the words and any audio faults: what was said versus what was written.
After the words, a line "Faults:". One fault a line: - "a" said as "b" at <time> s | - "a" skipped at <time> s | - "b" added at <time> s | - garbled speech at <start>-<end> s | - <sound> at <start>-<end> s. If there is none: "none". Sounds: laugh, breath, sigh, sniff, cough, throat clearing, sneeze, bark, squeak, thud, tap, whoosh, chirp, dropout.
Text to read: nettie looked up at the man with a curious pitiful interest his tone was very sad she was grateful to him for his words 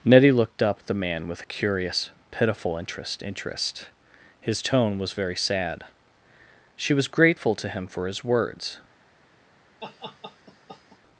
nettie looked up at the man with a curious pitiful interest interest his tone was very sad she was grateful to him for his words
Faults:
- "interest" added at 3.2 s
- laugh at 9.8-11.0 s